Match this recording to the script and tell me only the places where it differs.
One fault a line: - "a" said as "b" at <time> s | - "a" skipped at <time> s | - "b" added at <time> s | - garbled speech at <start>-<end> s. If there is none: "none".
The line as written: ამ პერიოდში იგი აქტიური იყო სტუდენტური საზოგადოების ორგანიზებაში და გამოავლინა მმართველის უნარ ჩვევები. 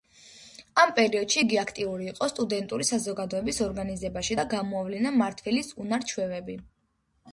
none